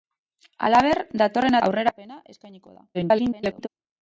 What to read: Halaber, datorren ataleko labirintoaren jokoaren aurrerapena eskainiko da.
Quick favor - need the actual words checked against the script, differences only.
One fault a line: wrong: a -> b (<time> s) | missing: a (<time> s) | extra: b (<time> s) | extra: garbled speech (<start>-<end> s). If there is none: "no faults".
missing: ataleko labirintoaren jokoaren (1.6 s)
extra: garbled speech (2.9-3.7 s)